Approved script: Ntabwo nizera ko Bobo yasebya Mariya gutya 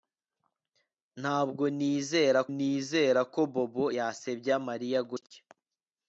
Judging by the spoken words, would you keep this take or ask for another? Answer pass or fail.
fail